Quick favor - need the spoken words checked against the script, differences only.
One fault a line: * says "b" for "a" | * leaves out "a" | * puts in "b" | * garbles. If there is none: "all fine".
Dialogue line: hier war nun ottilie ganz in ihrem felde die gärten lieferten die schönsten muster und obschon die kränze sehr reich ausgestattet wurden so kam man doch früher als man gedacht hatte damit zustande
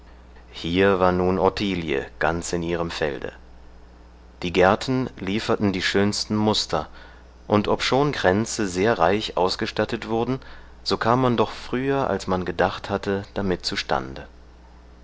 * leaves out "die"